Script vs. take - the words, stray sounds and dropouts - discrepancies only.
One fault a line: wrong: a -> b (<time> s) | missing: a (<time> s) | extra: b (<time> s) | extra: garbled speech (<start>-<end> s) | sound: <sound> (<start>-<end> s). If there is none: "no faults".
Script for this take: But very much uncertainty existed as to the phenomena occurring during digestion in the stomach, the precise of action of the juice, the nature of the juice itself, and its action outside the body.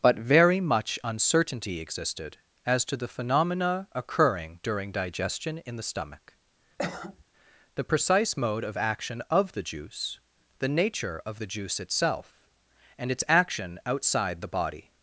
sound: cough (6.8-7.2 s)
extra: mode (8.4 s)